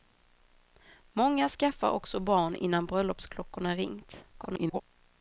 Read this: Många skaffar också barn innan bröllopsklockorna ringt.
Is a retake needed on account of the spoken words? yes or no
yes